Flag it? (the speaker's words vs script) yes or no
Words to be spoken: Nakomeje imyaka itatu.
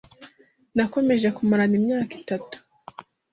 yes